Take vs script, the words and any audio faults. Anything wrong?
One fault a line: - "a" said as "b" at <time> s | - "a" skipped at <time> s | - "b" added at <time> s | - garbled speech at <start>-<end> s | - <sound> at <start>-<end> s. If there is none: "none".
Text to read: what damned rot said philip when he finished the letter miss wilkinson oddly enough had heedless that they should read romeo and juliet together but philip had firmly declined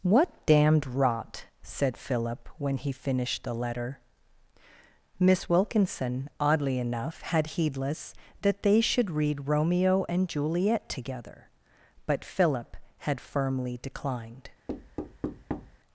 - thud at 14.7-15.8 s